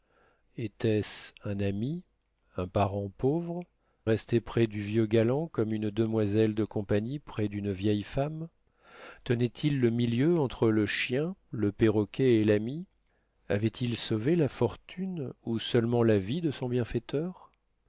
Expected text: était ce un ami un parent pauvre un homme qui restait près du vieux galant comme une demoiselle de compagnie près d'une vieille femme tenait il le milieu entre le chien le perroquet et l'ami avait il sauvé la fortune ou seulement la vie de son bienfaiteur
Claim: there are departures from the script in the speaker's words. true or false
true